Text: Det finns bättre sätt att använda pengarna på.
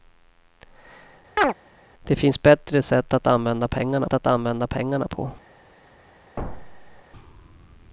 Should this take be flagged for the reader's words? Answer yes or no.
yes